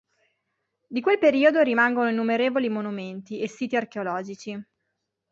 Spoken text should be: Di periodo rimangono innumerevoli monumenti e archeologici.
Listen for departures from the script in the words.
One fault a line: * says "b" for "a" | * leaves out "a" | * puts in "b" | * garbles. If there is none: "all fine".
* puts in "quel"
* puts in "siti"